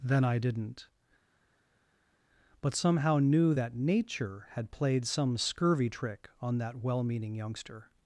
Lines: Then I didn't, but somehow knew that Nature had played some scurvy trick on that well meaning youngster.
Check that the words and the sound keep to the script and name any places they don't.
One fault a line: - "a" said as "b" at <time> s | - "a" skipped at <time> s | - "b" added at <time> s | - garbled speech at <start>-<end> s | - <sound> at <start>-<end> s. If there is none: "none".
none